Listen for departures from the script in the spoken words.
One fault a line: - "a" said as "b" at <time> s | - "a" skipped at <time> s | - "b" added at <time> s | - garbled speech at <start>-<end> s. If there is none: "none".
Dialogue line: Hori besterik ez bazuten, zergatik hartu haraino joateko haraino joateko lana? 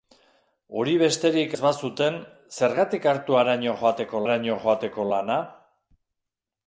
none